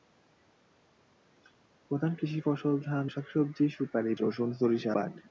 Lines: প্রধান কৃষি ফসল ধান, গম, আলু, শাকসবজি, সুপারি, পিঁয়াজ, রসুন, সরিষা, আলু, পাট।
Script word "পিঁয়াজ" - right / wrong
wrong